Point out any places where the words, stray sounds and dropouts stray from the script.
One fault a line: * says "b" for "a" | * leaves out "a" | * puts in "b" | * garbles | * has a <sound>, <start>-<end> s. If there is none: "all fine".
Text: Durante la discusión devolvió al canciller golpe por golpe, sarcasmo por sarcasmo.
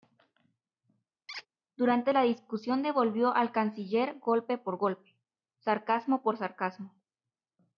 * has a squeak, 1.3-1.5 s